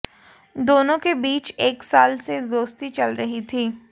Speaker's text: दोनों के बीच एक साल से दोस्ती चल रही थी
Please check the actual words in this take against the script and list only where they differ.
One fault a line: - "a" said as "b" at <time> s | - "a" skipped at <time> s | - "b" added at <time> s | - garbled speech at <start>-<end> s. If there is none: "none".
none